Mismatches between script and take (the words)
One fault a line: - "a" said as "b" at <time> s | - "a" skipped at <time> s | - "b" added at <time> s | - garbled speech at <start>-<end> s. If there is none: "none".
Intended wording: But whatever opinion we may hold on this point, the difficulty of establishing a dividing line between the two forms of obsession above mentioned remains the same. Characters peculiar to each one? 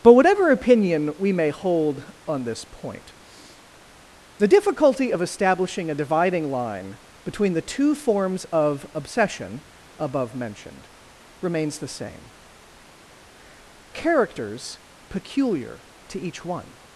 none